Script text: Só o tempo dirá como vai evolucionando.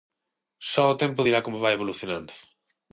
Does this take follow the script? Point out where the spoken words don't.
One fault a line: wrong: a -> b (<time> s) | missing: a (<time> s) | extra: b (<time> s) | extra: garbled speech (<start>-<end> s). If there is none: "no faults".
no faults